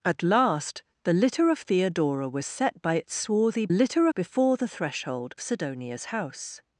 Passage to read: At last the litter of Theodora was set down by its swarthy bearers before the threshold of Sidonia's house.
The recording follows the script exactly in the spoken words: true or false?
false